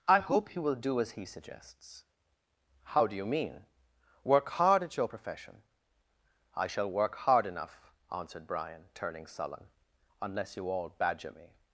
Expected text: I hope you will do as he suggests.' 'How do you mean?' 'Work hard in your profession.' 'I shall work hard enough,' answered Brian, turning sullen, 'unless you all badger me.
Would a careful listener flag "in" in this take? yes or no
yes